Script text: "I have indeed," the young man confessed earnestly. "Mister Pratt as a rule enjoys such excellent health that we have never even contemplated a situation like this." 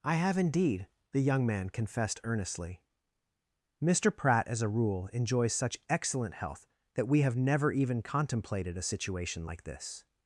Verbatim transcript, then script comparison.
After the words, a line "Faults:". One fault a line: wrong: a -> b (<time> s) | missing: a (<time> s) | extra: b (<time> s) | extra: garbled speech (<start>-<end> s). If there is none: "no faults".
"I have indeed," the young man confessed earnestly. "Mister Pratt as a rule enjoys such excellent health that we have never even contemplated a situation like this."
Faults:
no faults